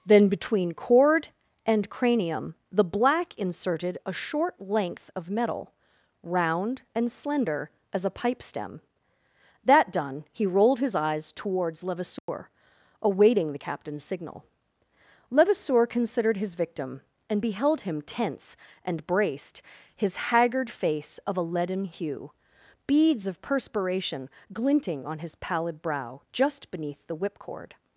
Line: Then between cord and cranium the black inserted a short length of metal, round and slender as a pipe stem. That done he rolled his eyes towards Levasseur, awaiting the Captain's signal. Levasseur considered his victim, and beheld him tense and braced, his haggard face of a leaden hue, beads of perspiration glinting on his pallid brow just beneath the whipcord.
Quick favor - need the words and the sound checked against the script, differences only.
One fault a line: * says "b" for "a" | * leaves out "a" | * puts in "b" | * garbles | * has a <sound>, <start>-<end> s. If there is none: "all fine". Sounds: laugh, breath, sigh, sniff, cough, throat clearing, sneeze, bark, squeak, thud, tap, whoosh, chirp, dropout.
* has a dropout, 12.2-12.3 s